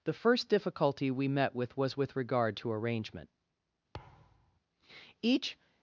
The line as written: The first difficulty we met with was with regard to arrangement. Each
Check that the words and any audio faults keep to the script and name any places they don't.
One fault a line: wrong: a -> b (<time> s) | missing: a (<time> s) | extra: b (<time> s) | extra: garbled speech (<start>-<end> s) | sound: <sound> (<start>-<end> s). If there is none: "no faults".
sound: thud (3.9-4.6 s)